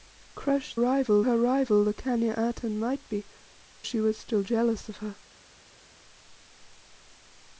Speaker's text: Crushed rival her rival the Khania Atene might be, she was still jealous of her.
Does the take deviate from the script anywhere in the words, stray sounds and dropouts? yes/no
no